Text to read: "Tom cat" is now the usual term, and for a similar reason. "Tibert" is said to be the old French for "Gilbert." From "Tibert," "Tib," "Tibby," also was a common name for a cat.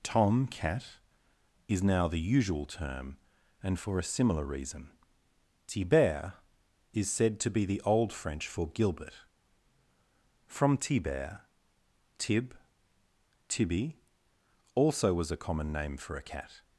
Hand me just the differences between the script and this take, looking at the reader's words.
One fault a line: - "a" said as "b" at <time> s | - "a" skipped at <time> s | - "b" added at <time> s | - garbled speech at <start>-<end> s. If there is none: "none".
none